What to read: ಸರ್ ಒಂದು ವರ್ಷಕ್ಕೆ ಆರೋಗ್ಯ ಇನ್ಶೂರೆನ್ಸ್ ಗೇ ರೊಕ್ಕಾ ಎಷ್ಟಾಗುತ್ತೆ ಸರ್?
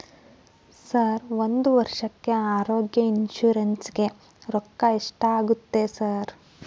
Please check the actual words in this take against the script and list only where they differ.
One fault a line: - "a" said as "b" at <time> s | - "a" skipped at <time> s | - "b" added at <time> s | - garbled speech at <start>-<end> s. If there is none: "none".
none